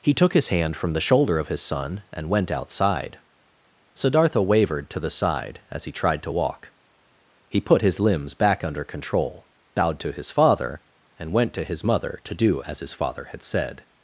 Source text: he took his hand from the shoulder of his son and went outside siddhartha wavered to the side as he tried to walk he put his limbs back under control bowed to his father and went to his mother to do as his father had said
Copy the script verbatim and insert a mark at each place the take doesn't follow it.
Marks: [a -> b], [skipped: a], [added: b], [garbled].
he took his hand from the shoulder of his son and went outside siddhartha wavered to the side as he tried to walk he put his limbs back under control bowed to his father and went to his mother to do as his father had said